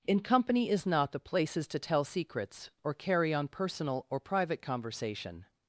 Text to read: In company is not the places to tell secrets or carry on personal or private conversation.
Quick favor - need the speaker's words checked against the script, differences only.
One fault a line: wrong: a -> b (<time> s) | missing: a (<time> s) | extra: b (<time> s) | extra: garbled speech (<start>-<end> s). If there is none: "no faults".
no faults